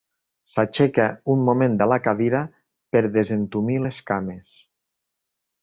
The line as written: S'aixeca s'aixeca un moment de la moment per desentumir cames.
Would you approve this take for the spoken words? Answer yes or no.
no